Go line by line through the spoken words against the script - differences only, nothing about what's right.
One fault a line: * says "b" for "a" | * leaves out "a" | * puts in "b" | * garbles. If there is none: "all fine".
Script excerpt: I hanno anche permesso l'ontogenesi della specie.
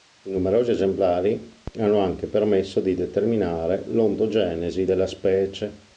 * puts in "numerosi esemplari"
* puts in "di determinare"